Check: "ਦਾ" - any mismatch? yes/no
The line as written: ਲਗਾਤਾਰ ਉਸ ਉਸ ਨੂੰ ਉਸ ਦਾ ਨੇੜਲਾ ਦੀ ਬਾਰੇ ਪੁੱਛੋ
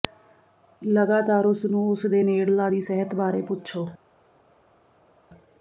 yes